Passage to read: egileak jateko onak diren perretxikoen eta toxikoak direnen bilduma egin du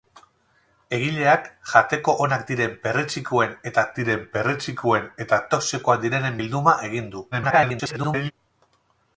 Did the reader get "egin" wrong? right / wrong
right